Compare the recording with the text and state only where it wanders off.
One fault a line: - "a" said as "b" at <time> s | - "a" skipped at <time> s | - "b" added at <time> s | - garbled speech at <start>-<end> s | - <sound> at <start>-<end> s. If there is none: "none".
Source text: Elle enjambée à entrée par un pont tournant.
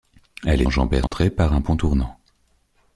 - dropout at 1.1-1.1 s